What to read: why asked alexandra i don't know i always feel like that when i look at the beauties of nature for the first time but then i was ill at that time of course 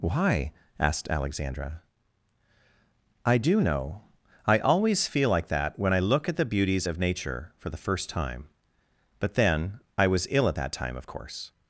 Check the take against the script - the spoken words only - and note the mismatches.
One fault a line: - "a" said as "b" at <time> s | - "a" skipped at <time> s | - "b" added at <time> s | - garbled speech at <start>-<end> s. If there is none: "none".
- "don't" said as "do" at 3.4 s